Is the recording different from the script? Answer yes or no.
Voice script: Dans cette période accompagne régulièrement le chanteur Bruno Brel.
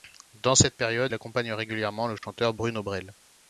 no